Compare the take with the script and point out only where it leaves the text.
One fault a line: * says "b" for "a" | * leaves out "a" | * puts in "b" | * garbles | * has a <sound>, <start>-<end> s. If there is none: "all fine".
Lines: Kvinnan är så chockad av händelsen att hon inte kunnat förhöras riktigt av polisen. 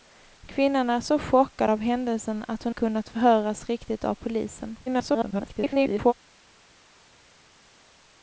* leaves out "inte"
* garbles